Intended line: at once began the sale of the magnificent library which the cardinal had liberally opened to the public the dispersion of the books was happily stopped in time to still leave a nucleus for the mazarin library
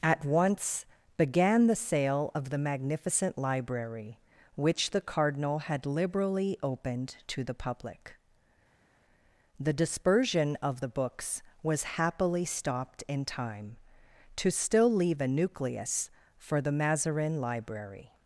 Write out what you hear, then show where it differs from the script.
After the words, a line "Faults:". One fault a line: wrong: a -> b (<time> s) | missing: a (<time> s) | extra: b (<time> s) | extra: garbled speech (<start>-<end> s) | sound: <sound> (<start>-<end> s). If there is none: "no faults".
at once began the sale of the magnificent library which the cardinal had liberally opened to the public the dispersion of the books was happily stopped in time to still leave a nucleus for the mazarin library
Faults:
no faults